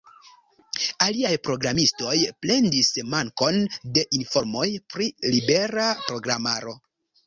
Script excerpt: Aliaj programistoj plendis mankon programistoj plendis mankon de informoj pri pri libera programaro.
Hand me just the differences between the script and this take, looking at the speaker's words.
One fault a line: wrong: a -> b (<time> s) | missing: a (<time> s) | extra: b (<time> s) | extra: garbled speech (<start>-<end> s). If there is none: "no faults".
missing: programistoj plendis mankon (3.6 s)
missing: pri (5.2 s)